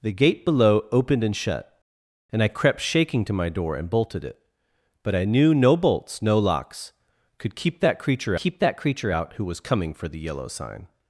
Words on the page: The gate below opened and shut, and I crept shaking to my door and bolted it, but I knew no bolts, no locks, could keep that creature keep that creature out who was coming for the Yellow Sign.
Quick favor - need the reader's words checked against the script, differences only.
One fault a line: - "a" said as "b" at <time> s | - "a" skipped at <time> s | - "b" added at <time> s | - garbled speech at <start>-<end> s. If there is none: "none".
none